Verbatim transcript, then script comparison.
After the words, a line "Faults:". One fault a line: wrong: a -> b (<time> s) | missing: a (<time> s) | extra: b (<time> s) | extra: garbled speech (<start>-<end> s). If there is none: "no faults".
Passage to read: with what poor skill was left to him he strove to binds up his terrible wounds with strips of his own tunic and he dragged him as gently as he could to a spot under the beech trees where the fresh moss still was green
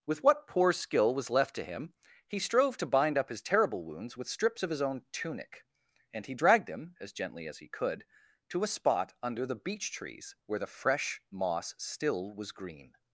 with what poor skill was left to him he strove to bind up his terrible wounds with strips of his own tunic and he dragged him as gently as he could to a spot under the beech trees where the fresh moss still was green
Faults:
wrong: binds -> bind (2.9 s)